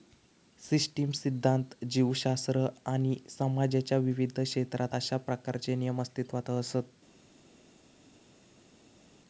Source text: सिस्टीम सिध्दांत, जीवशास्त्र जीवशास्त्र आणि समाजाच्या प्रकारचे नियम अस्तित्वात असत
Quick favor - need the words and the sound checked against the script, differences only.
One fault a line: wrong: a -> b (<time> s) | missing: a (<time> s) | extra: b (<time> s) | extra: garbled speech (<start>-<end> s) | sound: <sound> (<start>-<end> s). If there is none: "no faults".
missing: जीवशास्त्र (2.6 s)
extra: विविध क्षेत्रात अशा (4.0 s)